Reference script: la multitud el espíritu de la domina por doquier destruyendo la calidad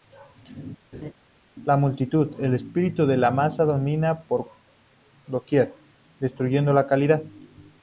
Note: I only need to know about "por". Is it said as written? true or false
true